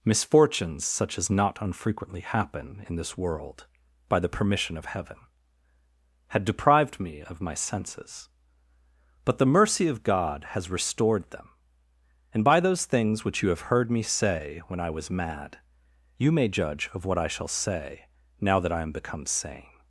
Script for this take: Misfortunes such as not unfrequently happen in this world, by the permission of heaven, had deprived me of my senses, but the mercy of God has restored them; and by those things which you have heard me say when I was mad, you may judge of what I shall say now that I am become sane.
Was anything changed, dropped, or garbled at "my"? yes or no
no